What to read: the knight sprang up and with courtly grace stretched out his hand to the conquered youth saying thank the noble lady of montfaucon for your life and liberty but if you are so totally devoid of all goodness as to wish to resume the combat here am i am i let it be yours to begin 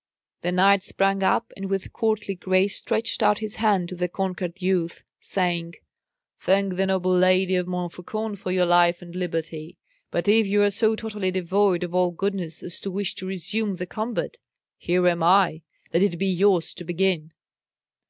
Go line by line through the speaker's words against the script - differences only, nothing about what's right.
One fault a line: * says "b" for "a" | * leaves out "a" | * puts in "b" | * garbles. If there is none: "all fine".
* leaves out "am i"